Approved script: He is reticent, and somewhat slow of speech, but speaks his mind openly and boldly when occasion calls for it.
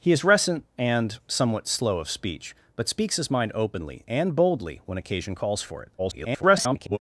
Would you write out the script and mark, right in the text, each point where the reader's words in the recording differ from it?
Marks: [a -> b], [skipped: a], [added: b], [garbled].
He is reticent, and somewhat slow of speech, but speaks his mind openly and boldly when occasion calls for it. [garbled]